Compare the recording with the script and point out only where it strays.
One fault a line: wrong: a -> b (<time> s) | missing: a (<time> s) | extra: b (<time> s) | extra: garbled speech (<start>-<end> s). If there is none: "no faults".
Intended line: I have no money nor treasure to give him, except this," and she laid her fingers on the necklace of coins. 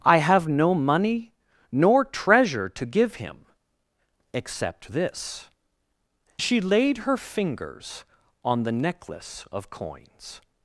missing: and (5.5 s)